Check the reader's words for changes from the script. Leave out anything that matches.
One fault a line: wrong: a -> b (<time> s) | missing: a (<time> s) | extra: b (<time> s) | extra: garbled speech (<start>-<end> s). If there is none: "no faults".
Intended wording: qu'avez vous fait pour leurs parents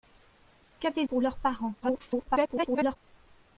missing: vous fait (1.1 s)
extra: garbled speech (1.8-3.0 s)